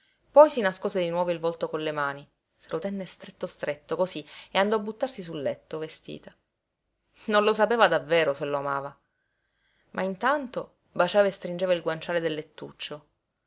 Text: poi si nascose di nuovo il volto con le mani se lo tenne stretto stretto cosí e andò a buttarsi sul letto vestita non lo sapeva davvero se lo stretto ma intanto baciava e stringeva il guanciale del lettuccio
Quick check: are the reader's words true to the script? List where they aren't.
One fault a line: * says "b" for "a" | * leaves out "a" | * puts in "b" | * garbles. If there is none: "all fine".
* says "amava" for "stretto"